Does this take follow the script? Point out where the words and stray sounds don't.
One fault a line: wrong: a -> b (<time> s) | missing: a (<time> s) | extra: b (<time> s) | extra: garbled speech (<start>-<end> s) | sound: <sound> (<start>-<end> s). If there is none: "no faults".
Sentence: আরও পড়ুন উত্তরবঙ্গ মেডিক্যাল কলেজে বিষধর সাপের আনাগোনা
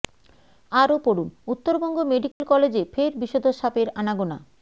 sound: dropout (2.3-2.4 s)
extra: ফের (2.9 s)